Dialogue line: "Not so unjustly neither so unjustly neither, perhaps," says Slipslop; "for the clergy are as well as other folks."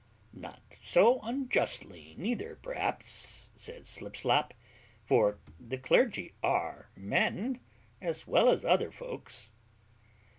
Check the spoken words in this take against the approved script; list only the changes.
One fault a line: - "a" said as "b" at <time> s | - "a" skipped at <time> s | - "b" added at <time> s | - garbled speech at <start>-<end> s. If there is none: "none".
- "so unjustly neither" skipped at 2.5 s
- "men" added at 7.0 s